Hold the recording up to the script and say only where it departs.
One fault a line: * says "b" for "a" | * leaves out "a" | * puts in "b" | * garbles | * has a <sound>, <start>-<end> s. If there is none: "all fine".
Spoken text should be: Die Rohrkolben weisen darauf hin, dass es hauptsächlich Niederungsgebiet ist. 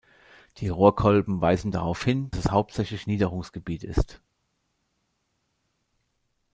* leaves out "dass"